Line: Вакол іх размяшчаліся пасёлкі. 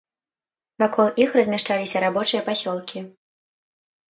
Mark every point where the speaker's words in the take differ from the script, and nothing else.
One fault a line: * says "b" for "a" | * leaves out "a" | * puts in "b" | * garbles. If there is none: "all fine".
* puts in "рабочыя"